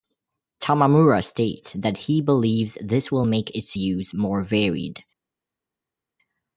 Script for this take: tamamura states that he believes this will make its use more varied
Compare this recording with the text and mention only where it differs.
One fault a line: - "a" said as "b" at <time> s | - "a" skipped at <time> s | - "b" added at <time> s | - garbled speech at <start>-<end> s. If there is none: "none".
none